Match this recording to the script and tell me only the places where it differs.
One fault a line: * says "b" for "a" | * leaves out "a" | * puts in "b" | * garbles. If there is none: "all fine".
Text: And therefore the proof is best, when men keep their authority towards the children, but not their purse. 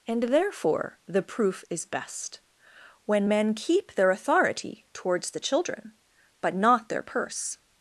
all fine